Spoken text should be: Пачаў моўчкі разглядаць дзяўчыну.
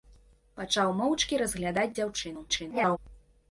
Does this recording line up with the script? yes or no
no